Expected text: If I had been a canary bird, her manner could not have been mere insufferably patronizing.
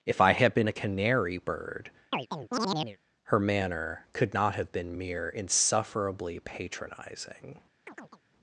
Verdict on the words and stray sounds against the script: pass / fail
fail